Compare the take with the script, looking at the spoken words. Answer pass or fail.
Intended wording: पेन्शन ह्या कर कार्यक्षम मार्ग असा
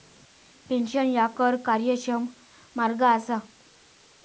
pass